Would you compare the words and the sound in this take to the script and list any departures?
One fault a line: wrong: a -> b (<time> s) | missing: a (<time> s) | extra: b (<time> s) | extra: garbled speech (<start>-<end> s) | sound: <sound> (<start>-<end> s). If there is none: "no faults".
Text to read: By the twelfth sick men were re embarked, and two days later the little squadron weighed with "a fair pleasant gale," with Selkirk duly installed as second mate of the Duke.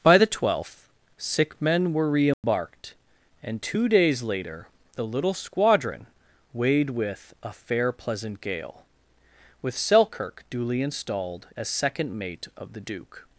sound: dropout (2.3-2.4 s)